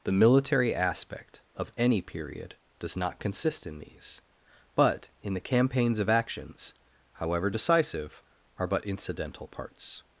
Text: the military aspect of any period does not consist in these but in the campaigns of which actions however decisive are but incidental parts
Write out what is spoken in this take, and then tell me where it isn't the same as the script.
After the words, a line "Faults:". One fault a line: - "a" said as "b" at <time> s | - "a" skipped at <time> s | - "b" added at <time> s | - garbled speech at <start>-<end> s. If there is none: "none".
the military aspect of any period does not consist in these but in the campaigns of actions however decisive are but incidental parts
Faults:
- "which" skipped at 6.1 s